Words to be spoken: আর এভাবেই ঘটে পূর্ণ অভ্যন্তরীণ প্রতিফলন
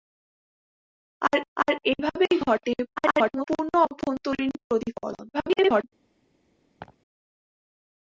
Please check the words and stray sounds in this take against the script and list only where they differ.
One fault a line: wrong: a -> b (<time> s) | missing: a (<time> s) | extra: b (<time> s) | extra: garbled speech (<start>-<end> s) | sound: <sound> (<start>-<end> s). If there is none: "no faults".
extra: আর (1.6 s)
extra: garbled speech (3.0-3.5 s)
extra: garbled speech (5.3-5.8 s)
sound: laugh (6.8-7.0 s)